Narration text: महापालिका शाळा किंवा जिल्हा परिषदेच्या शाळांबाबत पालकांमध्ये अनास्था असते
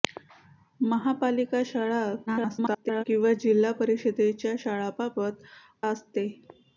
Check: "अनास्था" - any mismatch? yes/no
yes